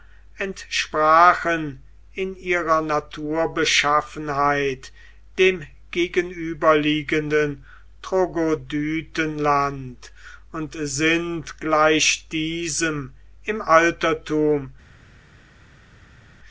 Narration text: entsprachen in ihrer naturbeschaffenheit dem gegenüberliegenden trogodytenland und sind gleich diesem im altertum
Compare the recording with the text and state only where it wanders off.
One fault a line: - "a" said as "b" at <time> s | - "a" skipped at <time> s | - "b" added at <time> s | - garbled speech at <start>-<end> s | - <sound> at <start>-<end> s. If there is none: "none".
none